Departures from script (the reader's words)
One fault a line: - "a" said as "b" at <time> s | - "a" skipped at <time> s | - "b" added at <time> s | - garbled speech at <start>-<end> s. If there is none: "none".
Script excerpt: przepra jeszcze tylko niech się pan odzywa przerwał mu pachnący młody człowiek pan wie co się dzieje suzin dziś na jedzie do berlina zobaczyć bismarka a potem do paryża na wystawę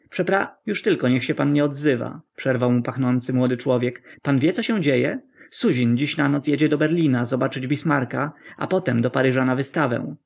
- "jeszcze" said as "już" at 0.6 s
- "nie" added at 1.5 s
- "noc" added at 6.3 s